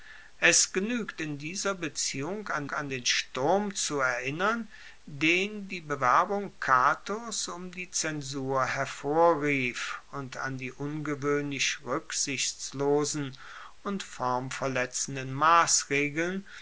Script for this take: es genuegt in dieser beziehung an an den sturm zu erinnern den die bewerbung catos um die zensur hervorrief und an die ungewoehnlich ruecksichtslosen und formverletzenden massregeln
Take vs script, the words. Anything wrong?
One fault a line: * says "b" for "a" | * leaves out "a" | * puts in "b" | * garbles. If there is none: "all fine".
all fine